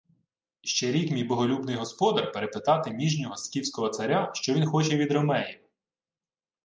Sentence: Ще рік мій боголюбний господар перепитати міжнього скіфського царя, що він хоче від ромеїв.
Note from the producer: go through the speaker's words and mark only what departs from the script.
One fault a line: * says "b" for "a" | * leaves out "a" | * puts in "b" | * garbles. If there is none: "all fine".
all fine